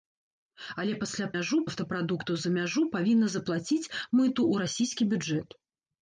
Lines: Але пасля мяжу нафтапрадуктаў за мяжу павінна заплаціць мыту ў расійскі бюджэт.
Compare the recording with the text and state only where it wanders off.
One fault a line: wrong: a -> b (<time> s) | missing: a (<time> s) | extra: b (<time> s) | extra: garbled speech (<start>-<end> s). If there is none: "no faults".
no faults